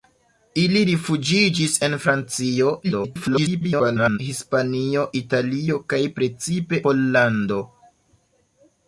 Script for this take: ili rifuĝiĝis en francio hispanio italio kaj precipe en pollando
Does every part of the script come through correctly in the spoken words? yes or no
no